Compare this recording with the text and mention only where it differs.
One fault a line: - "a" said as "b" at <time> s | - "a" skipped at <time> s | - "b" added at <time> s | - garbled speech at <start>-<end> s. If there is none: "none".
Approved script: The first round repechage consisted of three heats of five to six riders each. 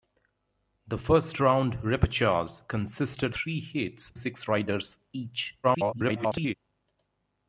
- "of" skipped at 3.4 s
- "of five to" skipped at 4.1 s
- garbled speech at 5.6-6.5 s